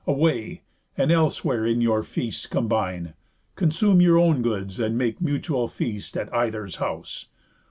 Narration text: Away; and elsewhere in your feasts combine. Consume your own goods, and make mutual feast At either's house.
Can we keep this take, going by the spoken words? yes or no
yes